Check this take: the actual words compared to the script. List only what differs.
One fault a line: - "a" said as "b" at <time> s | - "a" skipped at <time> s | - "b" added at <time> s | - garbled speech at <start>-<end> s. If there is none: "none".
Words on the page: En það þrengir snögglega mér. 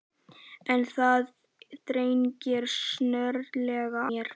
none